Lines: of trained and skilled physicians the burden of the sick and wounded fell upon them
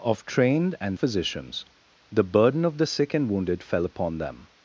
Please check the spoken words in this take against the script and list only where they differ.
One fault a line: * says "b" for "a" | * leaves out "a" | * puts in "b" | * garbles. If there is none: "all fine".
* leaves out "skilled"